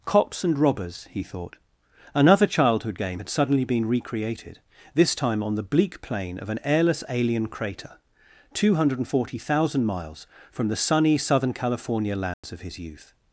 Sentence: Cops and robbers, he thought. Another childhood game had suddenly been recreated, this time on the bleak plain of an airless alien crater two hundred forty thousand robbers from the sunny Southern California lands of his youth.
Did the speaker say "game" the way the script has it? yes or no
yes